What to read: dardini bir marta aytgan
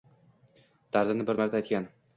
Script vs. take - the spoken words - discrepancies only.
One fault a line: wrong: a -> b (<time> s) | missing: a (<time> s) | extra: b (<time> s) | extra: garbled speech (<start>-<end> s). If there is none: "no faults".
no faults